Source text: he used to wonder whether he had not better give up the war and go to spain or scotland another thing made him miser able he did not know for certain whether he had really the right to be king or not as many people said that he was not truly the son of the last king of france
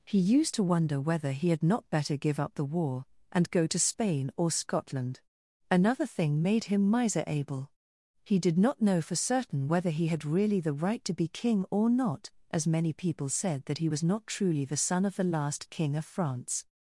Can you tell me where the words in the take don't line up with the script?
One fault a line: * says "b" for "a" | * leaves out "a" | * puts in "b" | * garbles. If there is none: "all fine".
all fine